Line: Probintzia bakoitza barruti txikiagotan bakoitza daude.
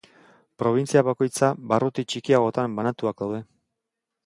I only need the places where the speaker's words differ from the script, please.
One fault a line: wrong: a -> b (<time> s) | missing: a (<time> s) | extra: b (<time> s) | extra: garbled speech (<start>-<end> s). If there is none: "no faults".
wrong: bakoitza -> banatuak (2.8 s)